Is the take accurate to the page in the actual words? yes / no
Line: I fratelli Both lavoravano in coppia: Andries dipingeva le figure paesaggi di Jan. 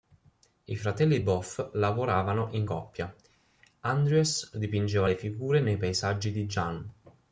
no